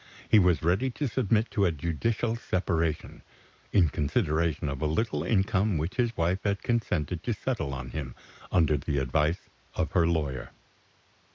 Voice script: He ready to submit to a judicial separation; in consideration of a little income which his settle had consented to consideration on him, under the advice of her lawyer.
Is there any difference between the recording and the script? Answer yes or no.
yes